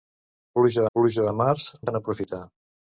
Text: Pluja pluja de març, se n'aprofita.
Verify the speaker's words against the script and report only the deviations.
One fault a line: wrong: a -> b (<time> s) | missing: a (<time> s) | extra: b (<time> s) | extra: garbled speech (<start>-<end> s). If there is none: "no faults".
no faults